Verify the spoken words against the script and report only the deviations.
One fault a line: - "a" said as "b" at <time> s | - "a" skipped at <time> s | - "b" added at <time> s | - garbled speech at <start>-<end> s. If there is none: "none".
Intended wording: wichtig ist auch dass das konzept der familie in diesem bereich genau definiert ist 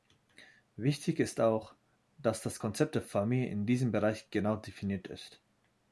none